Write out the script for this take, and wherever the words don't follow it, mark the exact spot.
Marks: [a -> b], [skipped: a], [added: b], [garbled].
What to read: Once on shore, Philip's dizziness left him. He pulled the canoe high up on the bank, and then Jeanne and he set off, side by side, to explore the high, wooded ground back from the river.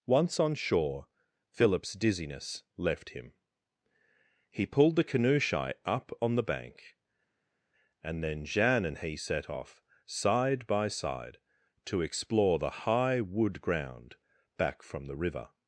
Once on shore, Philip's dizziness left him. He pulled the canoe [high -> shy] up on the bank, and then Jeanne and he set off, side by side, to explore the high, [wooded -> wood] ground back from the river.